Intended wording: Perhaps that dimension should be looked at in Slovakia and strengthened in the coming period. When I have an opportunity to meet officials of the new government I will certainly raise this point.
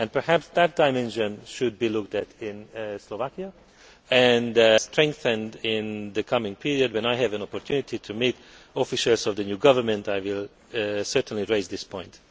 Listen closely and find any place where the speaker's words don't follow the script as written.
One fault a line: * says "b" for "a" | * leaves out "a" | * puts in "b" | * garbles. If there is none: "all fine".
all fine